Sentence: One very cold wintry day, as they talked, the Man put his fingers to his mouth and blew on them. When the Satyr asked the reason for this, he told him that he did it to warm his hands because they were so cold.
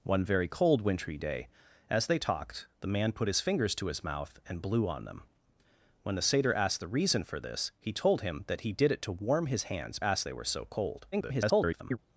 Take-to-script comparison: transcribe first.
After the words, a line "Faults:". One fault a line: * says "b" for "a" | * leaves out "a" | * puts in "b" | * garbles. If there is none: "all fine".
One very cold wintry day, as they talked, the Man put his fingers to his mouth and blew on them. When the Satyr asked the reason for this, he told him that he did it to warm his hands asked they were so cold. [garbled]
Faults:
* says "asked" for "because"
* garbles